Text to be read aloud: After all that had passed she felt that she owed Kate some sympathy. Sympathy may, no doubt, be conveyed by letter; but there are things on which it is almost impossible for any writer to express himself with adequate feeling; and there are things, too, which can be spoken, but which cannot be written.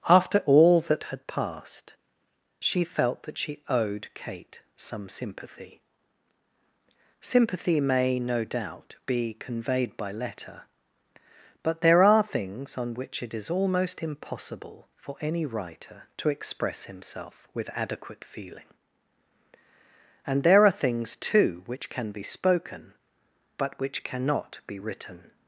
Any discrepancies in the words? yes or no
no